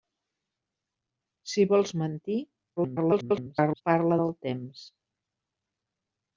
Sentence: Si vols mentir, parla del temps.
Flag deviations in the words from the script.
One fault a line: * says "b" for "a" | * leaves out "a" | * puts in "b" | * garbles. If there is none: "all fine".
* garbles